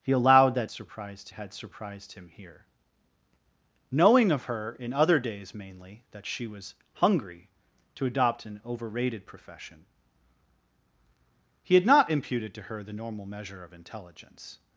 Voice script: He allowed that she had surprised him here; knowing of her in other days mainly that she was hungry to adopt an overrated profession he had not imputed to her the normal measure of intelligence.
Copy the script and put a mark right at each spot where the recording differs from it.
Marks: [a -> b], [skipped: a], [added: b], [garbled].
He allowed that [she -> surprised] had surprised him here; knowing of her in other days mainly that she was hungry to adopt an overrated profession he had not imputed to her the normal measure of intelligence.